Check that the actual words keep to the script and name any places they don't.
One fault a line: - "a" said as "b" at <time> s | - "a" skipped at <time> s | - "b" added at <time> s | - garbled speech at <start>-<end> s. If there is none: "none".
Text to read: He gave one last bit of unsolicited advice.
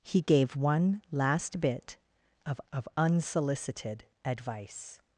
- "of" added at 2.7 s